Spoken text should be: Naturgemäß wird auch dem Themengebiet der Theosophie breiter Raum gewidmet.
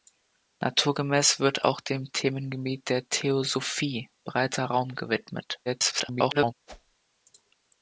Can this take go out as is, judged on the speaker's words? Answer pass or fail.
fail